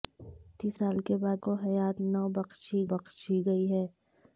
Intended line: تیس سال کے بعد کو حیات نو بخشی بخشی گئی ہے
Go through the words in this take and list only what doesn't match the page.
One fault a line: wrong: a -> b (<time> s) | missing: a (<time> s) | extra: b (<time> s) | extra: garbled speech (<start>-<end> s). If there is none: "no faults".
no faults